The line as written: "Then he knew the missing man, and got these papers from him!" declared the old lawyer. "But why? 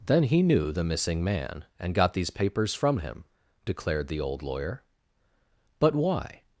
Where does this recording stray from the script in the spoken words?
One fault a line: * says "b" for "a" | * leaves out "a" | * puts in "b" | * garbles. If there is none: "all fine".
all fine